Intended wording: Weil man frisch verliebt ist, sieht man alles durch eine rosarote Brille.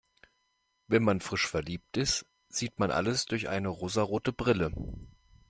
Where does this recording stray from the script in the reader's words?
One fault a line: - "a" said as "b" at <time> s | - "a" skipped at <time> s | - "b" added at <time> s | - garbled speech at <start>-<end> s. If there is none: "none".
- "Weil" said as "Wenn" at 0.9 s